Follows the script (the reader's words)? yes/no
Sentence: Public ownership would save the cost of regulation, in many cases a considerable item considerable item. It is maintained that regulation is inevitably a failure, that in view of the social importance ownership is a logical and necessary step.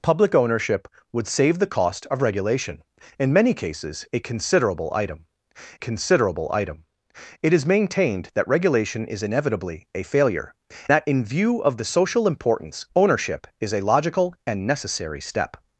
yes